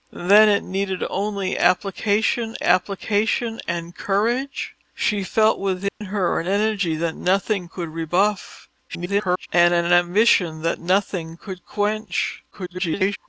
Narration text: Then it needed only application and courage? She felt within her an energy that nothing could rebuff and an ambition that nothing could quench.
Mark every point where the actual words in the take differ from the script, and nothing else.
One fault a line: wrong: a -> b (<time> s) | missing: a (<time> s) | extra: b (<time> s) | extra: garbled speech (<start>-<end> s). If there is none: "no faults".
extra: application (2.6 s)
extra: garbled speech (8.9-9.5 s)
extra: garbled speech (12.5-13.2 s)